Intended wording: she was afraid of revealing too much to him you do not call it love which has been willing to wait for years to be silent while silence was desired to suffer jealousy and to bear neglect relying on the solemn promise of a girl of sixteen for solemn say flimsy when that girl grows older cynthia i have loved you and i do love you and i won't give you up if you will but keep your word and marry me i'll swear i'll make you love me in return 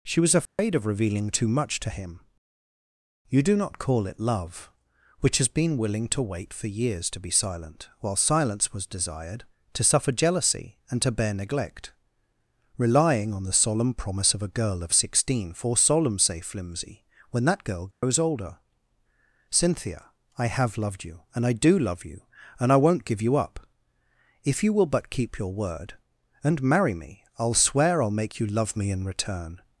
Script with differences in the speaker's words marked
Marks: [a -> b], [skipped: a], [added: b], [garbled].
she was afraid of revealing too much to him you do not call it love which has been willing to wait for years to be silent while silence was desired to suffer jealousy and to bear neglect relying on the solemn promise of a girl of sixteen for solemn say flimsy when that girl grows older cynthia i have loved you and i do love you and i won't give you up if you will but keep your word and marry me i'll swear i'll make you love me in return